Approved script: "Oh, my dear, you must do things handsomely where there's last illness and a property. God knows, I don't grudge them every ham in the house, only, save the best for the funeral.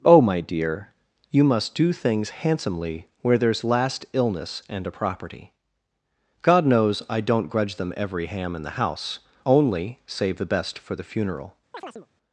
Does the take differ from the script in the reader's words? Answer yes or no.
no